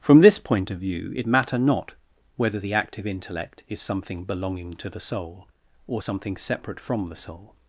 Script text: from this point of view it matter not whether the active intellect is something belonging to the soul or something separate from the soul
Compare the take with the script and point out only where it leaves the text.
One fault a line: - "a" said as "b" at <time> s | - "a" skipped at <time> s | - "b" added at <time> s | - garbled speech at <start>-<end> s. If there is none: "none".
none